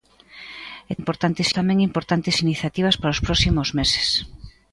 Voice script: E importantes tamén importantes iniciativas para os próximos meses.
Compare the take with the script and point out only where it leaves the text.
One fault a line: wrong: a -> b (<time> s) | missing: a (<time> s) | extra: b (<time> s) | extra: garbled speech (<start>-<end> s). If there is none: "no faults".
no faults